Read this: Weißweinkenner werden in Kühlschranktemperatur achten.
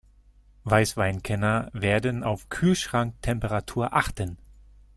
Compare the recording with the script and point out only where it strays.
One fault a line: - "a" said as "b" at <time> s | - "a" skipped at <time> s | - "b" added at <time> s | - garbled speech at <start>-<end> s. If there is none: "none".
- "in" said as "auf" at 2.2 s